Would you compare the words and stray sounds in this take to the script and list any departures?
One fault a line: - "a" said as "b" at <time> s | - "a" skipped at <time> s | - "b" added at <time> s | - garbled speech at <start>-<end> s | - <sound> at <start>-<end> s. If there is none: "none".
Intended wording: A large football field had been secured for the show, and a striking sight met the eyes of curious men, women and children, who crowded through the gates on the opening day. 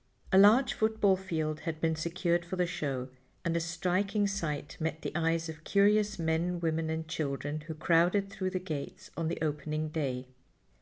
none